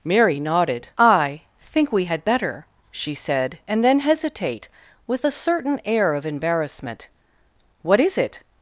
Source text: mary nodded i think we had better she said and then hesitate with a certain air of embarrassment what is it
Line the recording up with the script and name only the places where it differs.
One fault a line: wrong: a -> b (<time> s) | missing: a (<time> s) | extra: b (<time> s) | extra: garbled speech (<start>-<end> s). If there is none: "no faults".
no faults